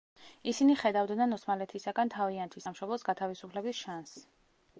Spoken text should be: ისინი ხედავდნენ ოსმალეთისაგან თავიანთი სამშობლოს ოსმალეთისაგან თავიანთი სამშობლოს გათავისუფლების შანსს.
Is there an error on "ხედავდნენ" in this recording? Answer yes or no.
no